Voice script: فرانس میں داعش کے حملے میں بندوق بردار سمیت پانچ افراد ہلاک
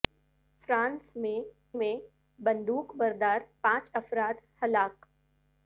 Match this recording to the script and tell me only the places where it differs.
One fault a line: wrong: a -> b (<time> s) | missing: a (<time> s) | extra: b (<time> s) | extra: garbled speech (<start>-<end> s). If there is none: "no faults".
missing: داعش کے حملے (1.4 s)
missing: سمیت (3.4 s)